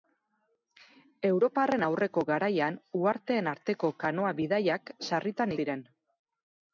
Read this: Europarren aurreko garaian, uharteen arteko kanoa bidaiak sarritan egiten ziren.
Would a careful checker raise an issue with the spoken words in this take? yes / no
yes